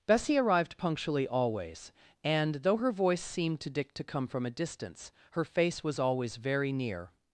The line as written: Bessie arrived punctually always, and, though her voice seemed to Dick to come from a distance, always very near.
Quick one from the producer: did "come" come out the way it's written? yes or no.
yes